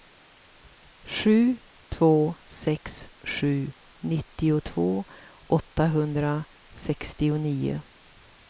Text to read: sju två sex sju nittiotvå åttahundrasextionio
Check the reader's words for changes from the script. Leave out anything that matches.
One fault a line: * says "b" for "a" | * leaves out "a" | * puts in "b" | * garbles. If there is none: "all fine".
all fine